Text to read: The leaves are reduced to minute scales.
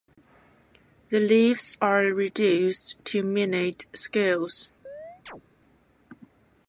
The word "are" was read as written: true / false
true